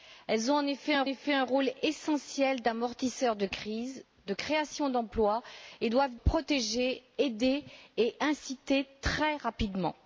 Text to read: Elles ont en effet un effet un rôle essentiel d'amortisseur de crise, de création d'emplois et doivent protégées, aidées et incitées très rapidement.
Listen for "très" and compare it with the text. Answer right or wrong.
right